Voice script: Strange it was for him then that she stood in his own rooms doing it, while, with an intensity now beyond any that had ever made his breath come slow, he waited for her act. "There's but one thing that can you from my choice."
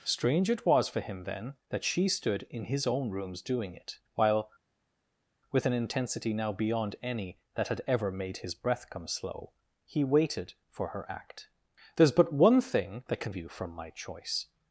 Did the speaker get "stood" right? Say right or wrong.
right